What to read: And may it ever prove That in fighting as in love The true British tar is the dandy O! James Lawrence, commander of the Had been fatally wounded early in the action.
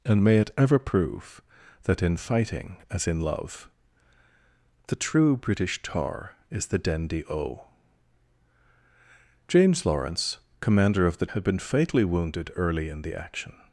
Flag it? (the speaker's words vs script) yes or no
no